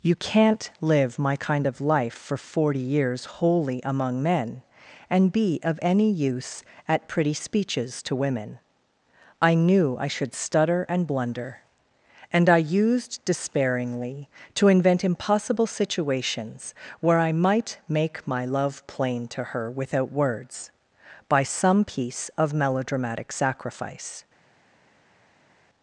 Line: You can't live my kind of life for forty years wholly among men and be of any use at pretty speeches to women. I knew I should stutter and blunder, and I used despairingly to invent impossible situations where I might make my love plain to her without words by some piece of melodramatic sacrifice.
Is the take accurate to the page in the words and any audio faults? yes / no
yes